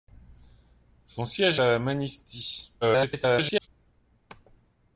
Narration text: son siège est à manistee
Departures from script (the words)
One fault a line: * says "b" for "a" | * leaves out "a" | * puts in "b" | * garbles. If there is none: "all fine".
* leaves out "est"
* garbles